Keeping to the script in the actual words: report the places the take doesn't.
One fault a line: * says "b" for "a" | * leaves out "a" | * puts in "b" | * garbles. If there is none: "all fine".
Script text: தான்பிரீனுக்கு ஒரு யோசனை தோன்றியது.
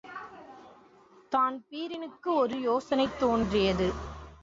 all fine